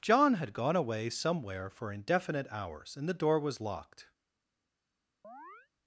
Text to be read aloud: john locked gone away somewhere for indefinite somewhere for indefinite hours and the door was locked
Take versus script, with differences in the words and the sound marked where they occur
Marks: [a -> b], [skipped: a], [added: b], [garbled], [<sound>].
john [locked -> had] gone away somewhere for indefinite [skipped: somewhere for indefinite] hours and the door was locked [chirp]